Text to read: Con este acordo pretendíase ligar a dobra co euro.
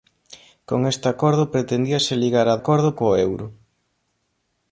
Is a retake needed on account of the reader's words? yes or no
yes